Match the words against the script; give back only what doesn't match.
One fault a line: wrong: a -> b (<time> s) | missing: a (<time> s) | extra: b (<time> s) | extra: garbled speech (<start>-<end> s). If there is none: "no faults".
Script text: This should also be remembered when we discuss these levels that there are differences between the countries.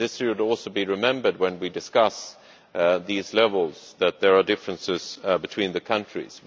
no faults